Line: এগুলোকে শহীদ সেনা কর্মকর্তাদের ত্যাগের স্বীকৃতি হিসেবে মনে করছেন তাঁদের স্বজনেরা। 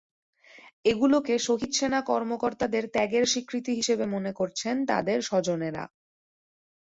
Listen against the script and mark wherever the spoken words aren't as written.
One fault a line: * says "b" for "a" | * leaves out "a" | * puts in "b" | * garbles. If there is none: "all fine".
all fine